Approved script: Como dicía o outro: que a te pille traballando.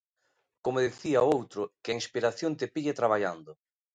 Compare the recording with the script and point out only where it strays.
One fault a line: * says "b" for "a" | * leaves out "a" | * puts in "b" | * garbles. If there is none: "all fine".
* puts in "inspiración"